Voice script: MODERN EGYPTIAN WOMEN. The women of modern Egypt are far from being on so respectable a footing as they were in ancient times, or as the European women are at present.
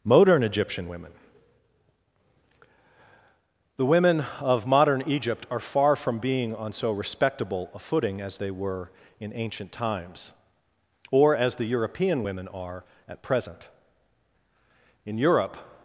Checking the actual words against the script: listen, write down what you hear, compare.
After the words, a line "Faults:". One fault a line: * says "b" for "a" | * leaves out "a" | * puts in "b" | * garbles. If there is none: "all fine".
MODERN EGYPTIAN WOMEN. The women of modern Egypt are far from being on so respectable a footing as they were in ancient times, or as the European women are at present. In Europe
Faults:
* puts in "In Europe"